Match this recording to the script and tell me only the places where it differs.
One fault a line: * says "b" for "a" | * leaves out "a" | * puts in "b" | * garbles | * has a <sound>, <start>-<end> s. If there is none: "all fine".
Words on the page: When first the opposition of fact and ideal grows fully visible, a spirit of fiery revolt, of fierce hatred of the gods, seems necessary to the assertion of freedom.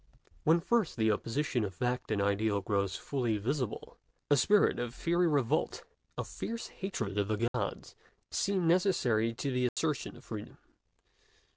* has a dropout, 7.5-7.5 s
* has a dropout, 9.7-9.8 s